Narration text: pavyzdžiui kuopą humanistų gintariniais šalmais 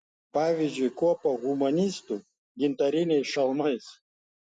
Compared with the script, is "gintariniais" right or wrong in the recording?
right